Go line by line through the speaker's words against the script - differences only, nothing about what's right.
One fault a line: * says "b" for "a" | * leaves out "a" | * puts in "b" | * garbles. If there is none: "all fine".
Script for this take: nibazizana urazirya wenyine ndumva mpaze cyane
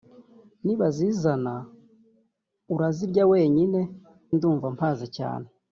all fine